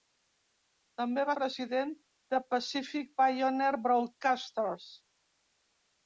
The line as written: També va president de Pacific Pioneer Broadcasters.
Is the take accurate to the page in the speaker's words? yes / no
yes